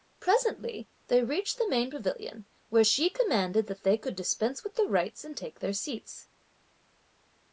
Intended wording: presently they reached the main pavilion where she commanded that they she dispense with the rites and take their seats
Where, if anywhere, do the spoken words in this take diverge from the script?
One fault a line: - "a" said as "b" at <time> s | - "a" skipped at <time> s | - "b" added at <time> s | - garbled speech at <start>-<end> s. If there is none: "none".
- "she" said as "could" at 4.0 s